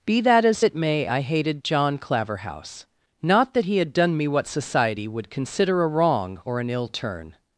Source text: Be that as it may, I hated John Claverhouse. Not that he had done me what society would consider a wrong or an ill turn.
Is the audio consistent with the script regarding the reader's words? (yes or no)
yes